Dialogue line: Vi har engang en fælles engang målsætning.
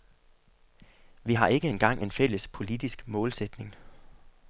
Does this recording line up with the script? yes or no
no